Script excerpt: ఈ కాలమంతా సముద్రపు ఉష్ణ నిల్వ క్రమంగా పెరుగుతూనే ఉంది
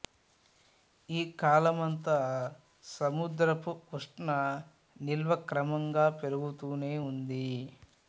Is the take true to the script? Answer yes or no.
yes